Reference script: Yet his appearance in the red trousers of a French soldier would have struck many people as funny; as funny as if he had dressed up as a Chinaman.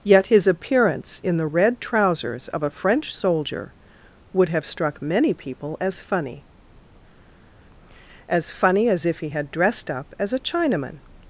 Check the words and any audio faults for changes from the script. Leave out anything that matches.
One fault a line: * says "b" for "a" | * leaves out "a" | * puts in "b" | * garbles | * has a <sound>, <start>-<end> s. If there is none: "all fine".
all fine